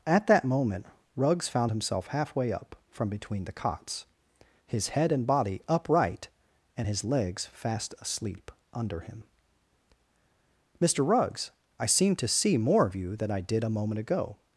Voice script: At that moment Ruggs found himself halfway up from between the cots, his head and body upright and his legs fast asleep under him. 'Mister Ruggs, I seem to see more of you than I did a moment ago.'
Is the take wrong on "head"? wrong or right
right